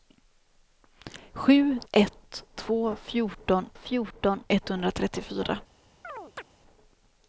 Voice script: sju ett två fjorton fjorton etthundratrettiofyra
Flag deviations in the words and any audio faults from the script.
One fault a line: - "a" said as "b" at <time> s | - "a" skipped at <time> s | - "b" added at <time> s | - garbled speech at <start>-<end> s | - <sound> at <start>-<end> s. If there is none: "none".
- chirp at 6.0-6.4 s